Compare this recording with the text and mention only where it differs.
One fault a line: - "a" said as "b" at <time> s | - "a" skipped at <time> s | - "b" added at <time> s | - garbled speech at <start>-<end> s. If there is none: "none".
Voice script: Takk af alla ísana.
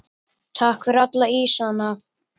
- "af" said as "fyrir" at 0.9 s